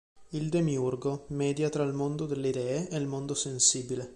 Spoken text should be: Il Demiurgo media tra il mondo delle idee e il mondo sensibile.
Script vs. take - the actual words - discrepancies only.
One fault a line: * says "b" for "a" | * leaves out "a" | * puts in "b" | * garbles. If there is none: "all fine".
all fine